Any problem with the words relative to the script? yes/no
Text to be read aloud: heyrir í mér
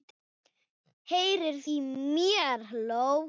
no